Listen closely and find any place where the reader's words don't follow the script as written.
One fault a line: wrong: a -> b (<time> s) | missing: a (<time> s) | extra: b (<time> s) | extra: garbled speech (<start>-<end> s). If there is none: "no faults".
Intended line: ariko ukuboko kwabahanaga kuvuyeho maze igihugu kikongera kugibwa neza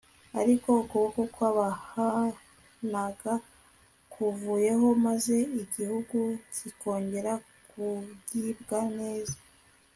no faults